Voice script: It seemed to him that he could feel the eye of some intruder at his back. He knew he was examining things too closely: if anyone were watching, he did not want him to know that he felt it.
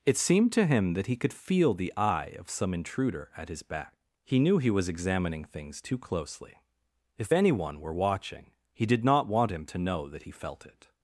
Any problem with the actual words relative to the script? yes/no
no